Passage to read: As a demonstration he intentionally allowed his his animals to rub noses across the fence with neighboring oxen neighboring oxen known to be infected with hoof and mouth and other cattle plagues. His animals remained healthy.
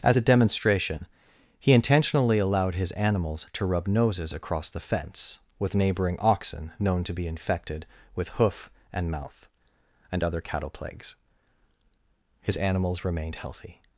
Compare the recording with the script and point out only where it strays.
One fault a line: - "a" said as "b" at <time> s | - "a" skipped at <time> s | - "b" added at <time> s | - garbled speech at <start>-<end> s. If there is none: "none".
- "his" skipped at 2.9 s
- "neighboring oxen" skipped at 6.7 s